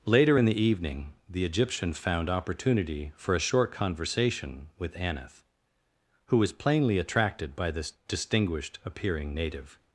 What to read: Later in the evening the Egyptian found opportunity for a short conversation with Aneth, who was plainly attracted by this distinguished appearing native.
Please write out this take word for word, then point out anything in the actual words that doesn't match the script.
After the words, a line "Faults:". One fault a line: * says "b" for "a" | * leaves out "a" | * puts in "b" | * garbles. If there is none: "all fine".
Later in the evening the Egyptian found opportunity for a short conversation with Aneth, who was plainly attracted by this distinguished appearing native.
Faults:
all fine